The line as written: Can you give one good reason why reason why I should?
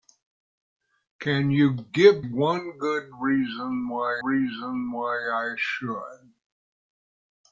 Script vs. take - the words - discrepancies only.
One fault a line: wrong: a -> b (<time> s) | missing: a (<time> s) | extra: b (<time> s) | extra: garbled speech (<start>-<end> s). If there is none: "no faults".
no faults